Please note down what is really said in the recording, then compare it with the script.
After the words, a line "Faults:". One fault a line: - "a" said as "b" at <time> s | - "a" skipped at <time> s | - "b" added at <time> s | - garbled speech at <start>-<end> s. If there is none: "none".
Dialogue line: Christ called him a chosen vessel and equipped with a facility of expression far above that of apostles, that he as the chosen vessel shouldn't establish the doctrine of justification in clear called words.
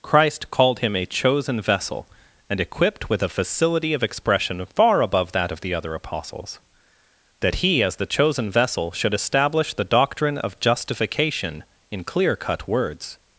Christ called him a chosen vessel and equipped with a facility of expression far above that of the other apostles, that he as the chosen vessel should establish the doctrine of justification in clear cut words.
Faults:
- "the other" added at 5.6 s
- "shouldn't" said as "should" at 8.9 s
- "called" said as "cut" at 12.4 s